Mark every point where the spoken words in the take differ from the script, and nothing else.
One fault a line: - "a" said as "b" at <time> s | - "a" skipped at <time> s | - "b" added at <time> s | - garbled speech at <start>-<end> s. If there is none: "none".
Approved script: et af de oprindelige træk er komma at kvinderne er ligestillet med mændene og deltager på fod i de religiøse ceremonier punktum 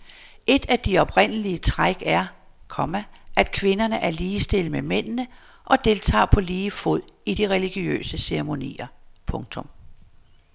- "lige" added at 6.4 s